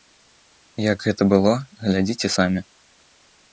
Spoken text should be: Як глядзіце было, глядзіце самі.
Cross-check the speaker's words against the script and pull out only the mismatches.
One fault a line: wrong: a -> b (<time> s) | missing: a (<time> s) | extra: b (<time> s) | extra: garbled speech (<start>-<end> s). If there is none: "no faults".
wrong: глядзіце -> гэта (1.1 s)